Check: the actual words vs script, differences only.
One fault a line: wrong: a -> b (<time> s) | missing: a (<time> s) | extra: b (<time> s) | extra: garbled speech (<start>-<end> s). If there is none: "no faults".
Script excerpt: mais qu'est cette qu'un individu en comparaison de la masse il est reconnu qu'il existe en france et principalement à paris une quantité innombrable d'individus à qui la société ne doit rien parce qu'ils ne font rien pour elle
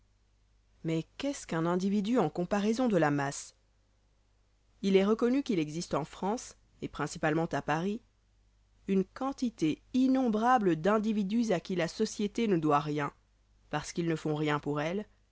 wrong: cette -> ce (1.3 s)